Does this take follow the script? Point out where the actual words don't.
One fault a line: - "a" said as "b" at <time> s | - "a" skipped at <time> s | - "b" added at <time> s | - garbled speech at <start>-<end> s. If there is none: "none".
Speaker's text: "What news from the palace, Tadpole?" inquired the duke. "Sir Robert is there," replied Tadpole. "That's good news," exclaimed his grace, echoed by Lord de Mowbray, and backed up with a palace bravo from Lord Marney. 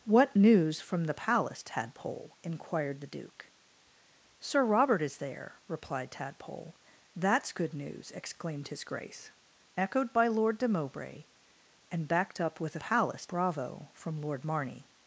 none